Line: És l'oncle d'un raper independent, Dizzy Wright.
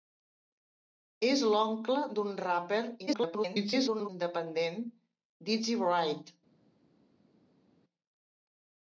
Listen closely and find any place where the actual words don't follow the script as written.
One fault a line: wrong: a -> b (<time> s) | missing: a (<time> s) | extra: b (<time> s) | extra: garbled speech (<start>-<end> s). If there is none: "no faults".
extra: garbled speech (3.1-4.1 s)